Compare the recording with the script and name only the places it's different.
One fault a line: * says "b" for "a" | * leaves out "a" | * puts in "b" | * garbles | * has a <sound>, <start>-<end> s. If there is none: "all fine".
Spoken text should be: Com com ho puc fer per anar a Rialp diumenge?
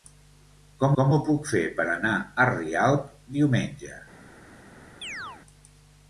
* has a chirp, 5.0-5.4 s